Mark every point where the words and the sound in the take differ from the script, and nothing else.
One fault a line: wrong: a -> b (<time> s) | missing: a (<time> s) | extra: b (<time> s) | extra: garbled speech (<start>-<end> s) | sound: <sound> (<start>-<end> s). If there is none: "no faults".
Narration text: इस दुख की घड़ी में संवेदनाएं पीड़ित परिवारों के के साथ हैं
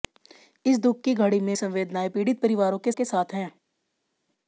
no faults